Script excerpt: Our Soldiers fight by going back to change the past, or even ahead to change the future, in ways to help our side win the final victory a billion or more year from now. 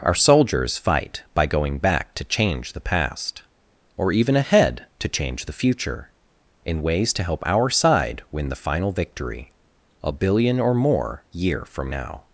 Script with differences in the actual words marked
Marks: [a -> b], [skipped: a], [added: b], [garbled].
Our Soldiers fight by going back to change the past, or even ahead to change the future, in ways to help our side win the final victory a billion or more year from now.